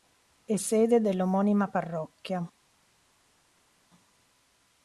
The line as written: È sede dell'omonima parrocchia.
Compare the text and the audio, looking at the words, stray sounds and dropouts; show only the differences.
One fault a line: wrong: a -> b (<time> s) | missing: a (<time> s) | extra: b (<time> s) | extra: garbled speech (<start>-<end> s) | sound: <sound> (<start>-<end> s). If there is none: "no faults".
no faults